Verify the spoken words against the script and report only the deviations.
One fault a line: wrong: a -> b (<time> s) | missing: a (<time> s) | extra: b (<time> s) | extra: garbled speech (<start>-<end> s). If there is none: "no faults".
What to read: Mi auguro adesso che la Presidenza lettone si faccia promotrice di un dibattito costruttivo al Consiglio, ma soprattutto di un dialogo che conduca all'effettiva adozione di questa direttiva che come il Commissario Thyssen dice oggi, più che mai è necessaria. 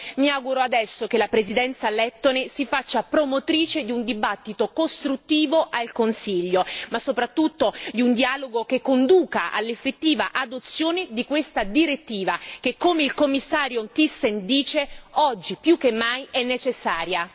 no faults